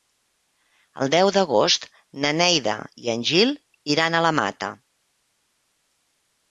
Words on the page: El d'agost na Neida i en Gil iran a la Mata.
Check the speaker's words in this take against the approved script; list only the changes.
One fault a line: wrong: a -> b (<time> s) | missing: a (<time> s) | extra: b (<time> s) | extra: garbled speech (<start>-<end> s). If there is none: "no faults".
extra: deu (1.1 s)